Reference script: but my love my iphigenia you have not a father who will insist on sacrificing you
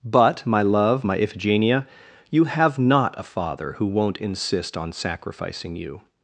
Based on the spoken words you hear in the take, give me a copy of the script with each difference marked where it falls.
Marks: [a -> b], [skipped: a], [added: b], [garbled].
but my love my iphigenia you have not a father who [will -> won't] insist on sacrificing you